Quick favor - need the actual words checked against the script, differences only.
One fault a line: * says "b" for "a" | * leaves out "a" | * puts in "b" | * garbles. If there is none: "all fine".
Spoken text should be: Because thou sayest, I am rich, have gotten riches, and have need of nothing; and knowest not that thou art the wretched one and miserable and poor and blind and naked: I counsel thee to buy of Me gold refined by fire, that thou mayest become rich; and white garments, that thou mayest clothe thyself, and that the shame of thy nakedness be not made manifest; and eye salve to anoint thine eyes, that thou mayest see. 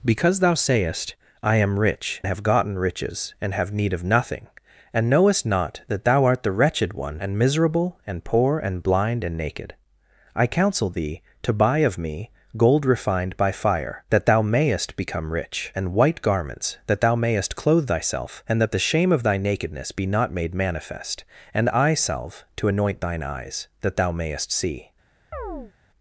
all fine